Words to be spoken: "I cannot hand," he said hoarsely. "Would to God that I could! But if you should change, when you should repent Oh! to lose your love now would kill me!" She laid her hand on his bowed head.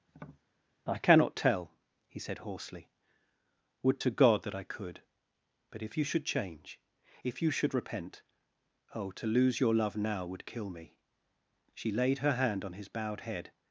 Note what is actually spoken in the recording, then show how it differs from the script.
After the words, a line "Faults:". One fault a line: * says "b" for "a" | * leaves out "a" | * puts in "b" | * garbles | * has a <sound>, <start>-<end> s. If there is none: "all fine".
"I cannot tell," he said hoarsely. "Would to God that I could! But if you should change, if you should repent Oh! to lose your love now would kill me!" She laid her hand on his bowed head.
Faults:
* has a tap, 0.1-0.4 s
* says "tell" for "hand"
* says "if" for "when"